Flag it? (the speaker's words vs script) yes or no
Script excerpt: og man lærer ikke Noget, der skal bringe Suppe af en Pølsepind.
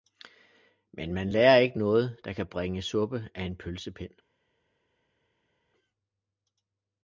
yes